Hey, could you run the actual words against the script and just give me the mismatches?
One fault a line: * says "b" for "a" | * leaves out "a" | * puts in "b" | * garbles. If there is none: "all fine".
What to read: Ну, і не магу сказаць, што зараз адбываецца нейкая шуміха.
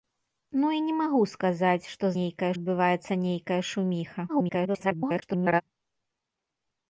* says "нейкая" for "зараз"
* garbles